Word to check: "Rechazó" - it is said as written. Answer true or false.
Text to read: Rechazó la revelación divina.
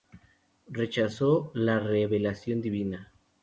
true